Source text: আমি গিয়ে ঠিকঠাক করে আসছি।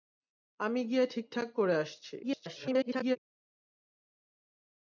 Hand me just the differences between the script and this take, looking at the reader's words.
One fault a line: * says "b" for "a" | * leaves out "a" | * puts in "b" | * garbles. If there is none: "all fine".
* garbles